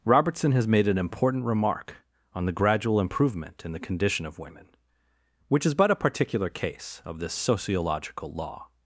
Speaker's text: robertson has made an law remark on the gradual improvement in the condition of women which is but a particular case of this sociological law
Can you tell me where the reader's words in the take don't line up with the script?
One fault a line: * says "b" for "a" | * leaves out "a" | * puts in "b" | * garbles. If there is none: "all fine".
* says "important" for "law"